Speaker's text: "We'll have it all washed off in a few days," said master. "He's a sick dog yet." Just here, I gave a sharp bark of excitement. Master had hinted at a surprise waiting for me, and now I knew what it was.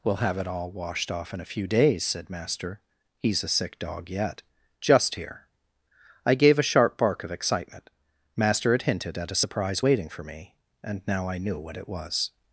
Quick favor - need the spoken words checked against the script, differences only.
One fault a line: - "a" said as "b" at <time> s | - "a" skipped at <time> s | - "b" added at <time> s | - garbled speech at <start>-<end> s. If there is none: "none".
none